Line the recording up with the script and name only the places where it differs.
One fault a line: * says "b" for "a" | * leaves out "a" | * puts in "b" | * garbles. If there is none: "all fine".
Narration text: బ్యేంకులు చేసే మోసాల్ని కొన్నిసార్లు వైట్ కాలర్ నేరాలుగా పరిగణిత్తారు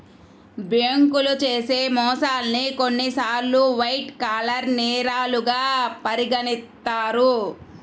all fine